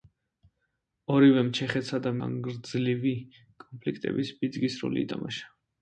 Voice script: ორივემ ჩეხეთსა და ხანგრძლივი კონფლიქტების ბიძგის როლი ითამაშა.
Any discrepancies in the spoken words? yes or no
no